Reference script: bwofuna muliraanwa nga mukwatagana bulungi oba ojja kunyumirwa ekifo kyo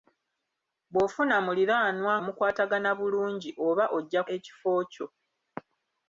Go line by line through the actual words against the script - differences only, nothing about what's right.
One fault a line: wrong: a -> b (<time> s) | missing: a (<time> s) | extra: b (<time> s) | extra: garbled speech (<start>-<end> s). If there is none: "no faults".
missing: nga (2.1 s)
missing: kunyumirwa (4.2 s)